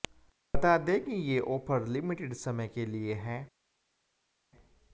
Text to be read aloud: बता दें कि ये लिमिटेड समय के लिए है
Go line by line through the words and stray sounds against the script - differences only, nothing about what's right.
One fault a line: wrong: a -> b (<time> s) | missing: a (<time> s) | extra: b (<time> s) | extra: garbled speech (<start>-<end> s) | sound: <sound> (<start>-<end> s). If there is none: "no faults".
extra: ऑफर (1.4 s)